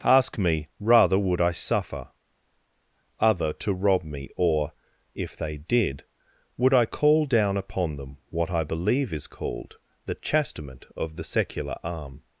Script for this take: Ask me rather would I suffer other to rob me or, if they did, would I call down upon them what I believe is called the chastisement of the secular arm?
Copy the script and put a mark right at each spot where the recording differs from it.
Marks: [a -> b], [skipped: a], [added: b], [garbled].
Ask me rather would I suffer other to rob me or, if they did, would I call down upon them what I believe is called the chastisement of the secular arm?